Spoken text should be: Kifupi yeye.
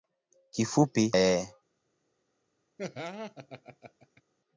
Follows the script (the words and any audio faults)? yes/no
no